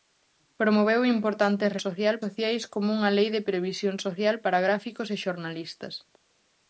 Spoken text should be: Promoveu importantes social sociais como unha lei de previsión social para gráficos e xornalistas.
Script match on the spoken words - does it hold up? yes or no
yes